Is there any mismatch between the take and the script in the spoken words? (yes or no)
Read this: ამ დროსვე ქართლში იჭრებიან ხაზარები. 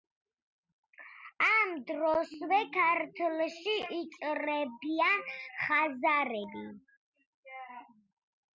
no